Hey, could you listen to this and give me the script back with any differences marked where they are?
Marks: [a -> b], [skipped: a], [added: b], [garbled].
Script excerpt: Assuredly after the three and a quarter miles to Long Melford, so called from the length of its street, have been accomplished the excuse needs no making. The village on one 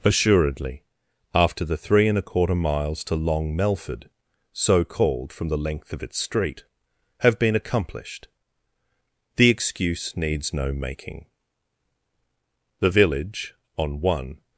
Assuredly after the three and a quarter miles to Long Melford, so called from the length of its street, have been accomplished the excuse needs no making. The village on one